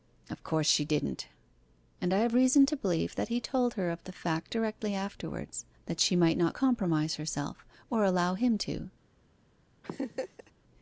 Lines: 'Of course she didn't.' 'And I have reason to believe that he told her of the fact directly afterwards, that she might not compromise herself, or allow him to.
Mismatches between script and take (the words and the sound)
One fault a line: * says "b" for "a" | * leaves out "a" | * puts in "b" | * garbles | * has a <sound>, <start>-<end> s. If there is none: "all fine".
* has a laugh, 9.8-10.5 s